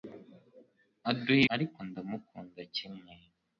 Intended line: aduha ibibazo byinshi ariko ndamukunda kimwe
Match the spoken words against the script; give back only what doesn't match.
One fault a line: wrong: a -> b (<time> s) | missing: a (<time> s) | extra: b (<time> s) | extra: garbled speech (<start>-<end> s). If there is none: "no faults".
missing: ibibazo byinshi (1.4 s)